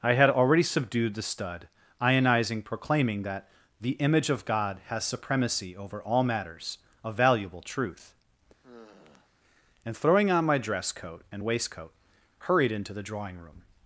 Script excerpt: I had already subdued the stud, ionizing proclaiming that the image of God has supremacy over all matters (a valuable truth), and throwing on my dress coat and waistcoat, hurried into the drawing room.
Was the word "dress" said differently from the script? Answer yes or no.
no